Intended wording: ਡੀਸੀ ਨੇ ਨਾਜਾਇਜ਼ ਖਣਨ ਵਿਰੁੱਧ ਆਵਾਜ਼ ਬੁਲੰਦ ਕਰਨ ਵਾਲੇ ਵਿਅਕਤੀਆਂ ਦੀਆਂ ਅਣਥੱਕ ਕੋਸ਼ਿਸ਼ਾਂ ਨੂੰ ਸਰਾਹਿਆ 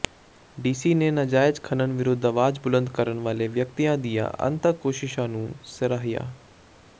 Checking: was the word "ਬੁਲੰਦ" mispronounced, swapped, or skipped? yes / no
no